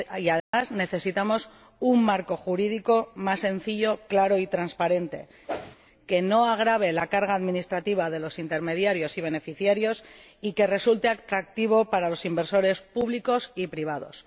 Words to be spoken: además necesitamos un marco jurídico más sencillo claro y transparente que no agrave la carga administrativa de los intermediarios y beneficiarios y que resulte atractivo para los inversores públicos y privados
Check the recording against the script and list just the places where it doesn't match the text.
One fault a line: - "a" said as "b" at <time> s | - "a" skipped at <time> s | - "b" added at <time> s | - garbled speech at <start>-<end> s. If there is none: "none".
none